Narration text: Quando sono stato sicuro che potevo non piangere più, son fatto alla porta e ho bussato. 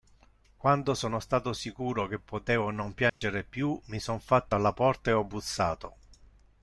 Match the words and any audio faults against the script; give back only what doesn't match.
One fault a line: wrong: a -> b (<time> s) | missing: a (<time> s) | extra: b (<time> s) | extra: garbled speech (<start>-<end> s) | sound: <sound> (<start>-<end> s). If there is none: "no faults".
sound: dropout (3.1-3.2 s)
extra: mi (3.9 s)